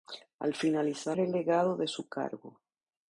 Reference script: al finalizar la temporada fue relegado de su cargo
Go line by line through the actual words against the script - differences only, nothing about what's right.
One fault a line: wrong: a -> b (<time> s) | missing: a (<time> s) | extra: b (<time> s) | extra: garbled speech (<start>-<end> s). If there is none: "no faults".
missing: la temporada fue (1.1 s)